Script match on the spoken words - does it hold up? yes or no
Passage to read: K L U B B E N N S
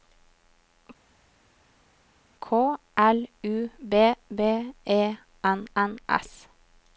yes